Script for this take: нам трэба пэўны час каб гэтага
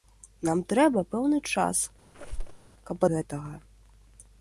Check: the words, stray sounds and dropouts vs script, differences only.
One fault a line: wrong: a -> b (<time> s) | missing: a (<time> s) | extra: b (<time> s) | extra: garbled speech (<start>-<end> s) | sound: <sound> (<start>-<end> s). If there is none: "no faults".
sound: squeak (2.1-2.7 s)